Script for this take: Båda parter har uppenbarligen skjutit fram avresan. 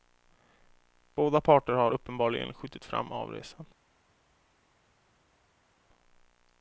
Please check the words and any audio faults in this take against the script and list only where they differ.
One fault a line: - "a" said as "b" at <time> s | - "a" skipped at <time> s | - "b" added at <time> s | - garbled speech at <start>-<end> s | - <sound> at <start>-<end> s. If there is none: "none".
none